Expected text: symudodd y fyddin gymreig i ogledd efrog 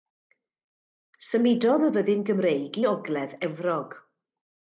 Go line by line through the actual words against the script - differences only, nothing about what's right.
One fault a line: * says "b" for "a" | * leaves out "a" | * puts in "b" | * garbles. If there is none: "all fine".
all fine